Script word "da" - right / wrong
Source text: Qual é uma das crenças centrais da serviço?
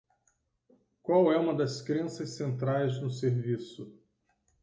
wrong